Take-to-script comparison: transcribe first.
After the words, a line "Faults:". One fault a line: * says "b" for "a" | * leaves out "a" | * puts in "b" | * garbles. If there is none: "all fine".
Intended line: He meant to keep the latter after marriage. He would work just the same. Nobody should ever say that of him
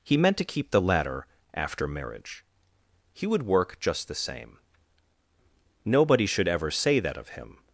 He meant to keep the latter after marriage. He would work just the same. Nobody should ever say that of him
Faults:
all fine